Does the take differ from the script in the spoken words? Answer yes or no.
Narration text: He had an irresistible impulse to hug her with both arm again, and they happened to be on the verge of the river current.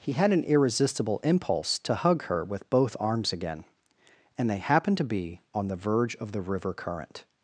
yes